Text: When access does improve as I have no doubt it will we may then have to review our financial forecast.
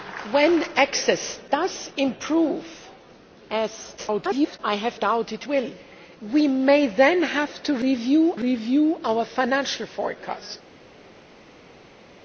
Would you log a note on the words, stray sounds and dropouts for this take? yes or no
yes